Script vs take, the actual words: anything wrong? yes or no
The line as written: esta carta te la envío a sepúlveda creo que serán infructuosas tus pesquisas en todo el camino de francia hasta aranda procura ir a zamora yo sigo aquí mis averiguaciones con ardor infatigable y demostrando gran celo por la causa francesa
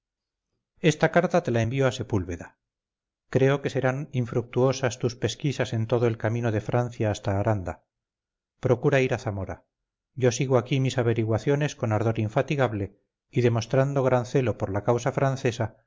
no